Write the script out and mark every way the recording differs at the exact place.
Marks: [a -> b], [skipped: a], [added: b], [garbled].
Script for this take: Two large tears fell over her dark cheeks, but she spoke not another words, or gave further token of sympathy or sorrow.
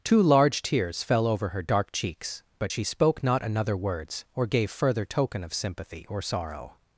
Two large tears fell over her dark cheeks, but she spoke not another words, or gave further token of sympathy or sorrow.